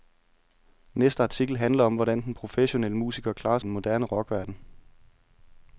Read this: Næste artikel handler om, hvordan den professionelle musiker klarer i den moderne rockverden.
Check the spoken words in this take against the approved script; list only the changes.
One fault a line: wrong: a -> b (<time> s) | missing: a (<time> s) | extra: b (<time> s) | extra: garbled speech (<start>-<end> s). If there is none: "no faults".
no faults